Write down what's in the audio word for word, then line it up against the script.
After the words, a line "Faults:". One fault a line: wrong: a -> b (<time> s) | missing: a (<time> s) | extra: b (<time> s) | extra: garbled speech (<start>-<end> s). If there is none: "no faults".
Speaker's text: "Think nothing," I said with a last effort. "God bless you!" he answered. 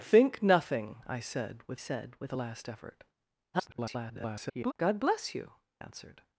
"Think nothing," I said with said with a last effort. [garbled] "God bless you!" answered.
Faults:
extra: said with (1.7 s)
extra: garbled speech (3.5-4.7 s)
missing: he (5.5 s)